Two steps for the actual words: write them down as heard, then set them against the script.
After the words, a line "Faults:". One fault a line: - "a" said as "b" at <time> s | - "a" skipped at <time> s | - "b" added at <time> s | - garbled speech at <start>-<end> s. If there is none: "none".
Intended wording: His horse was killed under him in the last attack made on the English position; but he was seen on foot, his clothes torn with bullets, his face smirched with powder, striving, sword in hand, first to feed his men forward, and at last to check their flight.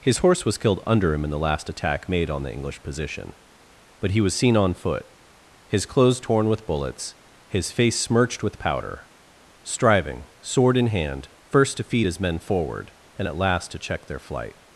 His horse was killed under him in the last attack made on the English position; but he was seen on foot, his clothes torn with bullets, his face smirched with powder, striving, sword in hand, first to feed his men forward, and at last to check their flight.
Faults:
none